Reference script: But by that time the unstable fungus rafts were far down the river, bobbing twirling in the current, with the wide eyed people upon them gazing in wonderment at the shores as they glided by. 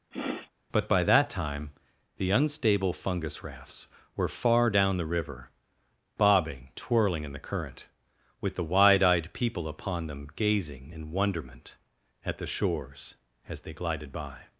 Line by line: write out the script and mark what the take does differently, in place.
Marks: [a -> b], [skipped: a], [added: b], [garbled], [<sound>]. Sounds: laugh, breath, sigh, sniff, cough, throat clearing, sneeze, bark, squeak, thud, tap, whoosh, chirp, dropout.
[sniff] But by that time the unstable fungus rafts were far down the river, bobbing twirling in the current, with the wide eyed people upon them gazing in wonderment at the shores as they glided by.